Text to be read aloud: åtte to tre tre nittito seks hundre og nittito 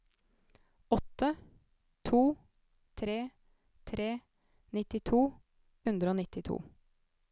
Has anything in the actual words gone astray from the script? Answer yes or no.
yes